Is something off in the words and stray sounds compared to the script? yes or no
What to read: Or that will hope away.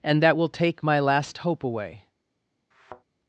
yes